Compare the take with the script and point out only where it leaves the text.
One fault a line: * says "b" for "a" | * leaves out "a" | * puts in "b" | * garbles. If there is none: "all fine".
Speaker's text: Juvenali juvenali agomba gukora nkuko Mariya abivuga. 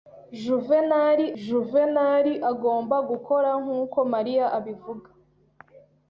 all fine